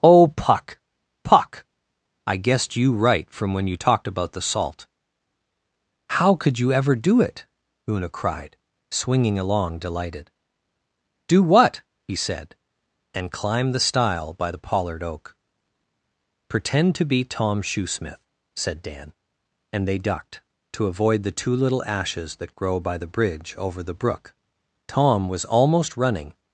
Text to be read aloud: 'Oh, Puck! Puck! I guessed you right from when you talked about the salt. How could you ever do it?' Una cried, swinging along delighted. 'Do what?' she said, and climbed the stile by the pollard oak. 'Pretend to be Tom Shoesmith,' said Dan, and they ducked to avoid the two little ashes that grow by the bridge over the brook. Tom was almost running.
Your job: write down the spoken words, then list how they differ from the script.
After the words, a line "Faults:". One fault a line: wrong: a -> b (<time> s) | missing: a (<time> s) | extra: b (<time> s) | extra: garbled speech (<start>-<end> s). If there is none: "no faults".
'Oh, Puck! Puck! I guessed you right from when you talked about the salt. How could you ever do it?' Una cried, swinging along delighted. 'Do what?' he said, and climbed the stile by the pollard oak. 'Pretend to be Tom Shoesmith,' said Dan, and they ducked to avoid the two little ashes that grow by the bridge over the brook. Tom was almost running.
Faults:
wrong: she -> he (12.0 s)